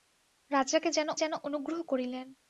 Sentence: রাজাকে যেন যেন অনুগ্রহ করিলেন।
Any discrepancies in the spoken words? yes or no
no